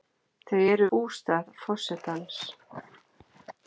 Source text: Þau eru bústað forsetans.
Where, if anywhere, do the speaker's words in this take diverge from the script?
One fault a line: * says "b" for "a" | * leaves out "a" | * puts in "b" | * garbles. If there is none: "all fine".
all fine